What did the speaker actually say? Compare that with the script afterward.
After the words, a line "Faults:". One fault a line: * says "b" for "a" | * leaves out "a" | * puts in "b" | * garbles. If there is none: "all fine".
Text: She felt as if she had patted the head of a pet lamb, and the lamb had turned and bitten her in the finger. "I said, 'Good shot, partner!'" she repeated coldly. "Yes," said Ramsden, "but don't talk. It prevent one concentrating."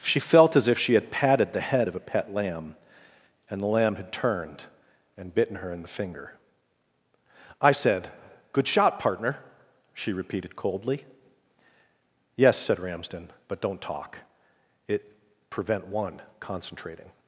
She felt as if she had patted the head of a pet lamb, and the lamb had turned and bitten her in the finger. "I said, 'Good shot, partner!'" she repeated coldly. "Yes," said Ramsden, "but don't talk. It prevent one concentrating."
Faults:
all fine